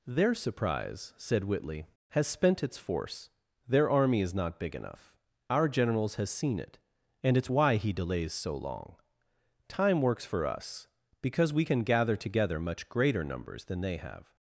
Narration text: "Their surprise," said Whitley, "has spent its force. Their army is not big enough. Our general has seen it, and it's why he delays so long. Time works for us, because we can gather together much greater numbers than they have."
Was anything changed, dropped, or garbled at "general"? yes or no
yes